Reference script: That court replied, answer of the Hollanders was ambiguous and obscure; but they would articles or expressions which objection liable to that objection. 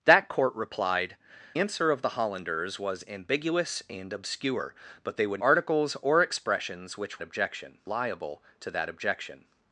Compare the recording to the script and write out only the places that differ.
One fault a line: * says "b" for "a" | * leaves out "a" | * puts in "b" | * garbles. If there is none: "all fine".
all fine